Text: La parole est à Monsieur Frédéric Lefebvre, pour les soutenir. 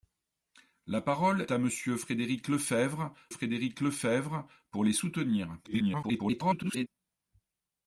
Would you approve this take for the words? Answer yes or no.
no